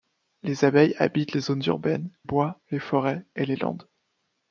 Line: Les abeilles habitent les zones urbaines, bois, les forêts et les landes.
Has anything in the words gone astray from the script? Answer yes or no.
no